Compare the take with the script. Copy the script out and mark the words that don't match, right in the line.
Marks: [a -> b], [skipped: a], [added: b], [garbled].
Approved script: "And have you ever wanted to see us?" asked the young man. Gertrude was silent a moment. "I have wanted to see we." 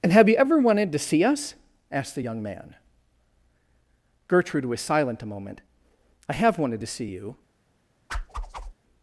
"And have you ever wanted to see us?" asked the young man. Gertrude was silent a moment. "I have wanted to see [we." -> you]